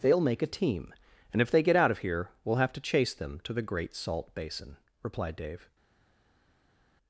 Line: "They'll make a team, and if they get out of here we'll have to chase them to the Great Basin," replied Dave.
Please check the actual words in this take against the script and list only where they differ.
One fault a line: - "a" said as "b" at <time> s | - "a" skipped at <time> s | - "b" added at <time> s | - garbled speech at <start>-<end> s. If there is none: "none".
- "Salt" added at 3.9 s